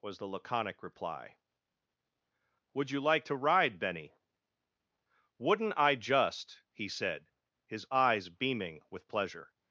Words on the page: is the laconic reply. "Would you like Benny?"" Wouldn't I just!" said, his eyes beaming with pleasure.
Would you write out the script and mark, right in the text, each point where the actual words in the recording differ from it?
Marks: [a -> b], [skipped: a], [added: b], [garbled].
[is -> was] the laconic reply. "Would you like [added: to ride] Benny?"" Wouldn't I just!" [added: he] said, his eyes beaming with pleasure.